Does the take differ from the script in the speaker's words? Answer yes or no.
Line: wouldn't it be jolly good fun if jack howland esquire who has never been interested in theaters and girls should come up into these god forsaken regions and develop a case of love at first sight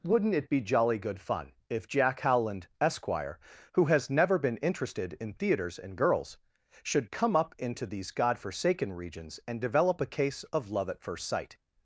no